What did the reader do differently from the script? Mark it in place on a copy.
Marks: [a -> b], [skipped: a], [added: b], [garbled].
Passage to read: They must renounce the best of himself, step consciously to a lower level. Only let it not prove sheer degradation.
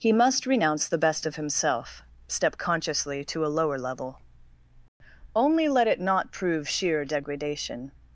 [They -> He] must renounce the best of himself, step consciously to a lower level. Only let it not prove sheer degradation.